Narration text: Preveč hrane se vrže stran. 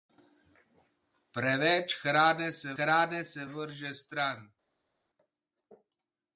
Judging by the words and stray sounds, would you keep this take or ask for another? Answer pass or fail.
fail